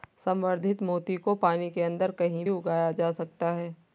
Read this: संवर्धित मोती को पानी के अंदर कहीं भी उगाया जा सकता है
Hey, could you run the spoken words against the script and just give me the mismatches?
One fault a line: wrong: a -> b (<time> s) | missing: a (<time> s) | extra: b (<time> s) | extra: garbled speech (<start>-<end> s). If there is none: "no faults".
missing: भी (2.5 s)